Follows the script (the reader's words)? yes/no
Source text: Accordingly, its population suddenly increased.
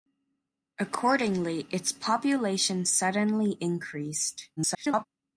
no